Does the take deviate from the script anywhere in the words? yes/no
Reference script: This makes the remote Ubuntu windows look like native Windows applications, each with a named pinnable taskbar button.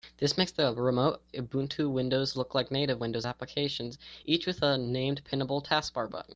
no